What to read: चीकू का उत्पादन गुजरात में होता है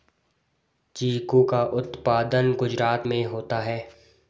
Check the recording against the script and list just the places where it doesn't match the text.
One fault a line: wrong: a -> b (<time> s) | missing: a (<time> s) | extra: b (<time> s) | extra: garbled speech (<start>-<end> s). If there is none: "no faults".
no faults